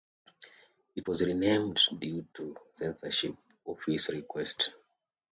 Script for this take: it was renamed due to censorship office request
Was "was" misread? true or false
false